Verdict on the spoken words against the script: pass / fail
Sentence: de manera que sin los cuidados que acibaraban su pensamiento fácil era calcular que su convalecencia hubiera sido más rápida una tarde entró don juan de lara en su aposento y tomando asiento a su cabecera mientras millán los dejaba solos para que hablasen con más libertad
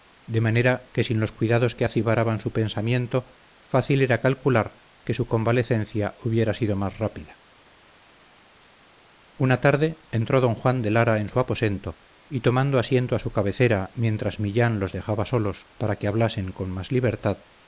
pass